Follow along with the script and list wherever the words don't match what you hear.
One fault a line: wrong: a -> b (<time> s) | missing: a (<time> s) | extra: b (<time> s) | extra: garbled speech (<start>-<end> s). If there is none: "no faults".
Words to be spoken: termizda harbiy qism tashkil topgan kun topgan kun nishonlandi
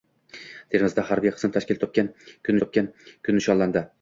no faults